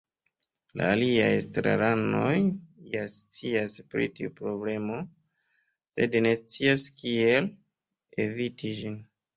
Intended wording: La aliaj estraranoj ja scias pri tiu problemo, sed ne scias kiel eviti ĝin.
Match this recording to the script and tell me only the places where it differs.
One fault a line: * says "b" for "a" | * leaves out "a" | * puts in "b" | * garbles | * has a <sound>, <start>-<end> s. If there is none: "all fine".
all fine